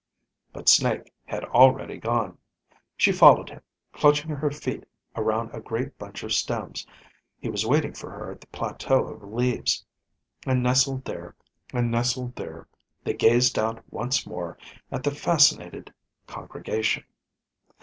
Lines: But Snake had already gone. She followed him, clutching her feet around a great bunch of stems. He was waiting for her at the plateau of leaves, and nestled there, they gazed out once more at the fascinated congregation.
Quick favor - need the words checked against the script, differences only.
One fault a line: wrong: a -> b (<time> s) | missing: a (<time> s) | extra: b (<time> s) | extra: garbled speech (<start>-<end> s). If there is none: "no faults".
extra: and nestled there (11.7 s)